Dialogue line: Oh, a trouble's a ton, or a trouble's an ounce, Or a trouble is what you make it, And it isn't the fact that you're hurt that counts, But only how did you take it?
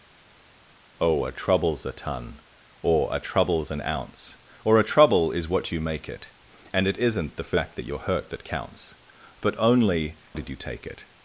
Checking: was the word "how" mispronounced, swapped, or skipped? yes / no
yes